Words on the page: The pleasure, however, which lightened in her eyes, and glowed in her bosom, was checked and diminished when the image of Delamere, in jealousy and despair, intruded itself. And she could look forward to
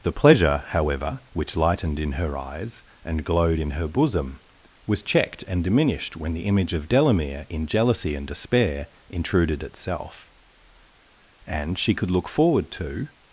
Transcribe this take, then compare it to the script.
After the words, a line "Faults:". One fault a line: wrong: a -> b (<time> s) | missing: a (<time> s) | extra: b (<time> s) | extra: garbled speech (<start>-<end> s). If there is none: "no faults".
The pleasure, however, which lightened in her eyes, and glowed in her bosom, was checked and diminished when the image of Delamere, in jealousy and despair, intruded itself. And she could look forward to
Faults:
no faults